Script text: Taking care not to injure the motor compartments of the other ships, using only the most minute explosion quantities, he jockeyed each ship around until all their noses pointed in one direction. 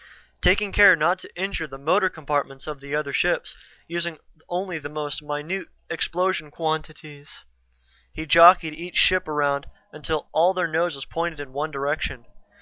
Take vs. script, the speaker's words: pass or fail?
pass